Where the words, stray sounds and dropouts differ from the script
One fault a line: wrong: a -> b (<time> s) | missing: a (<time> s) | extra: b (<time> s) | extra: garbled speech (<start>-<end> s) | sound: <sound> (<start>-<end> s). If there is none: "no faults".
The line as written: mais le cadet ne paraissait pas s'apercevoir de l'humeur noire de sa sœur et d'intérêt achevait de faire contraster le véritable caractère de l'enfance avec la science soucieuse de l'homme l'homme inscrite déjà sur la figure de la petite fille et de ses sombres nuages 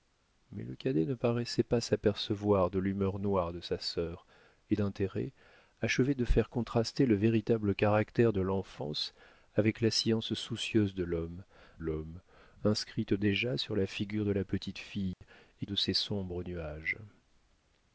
sound: dropout (15.1-15.2 s)